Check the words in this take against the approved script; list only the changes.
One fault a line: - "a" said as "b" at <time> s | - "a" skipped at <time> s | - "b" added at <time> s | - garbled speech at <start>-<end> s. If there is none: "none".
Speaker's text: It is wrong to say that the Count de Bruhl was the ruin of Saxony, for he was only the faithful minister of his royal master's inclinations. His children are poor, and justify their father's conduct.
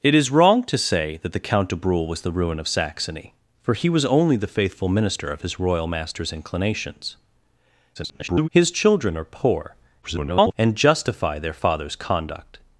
- garbled speech at 8.0-8.5 s
- garbled speech at 10.0-10.5 s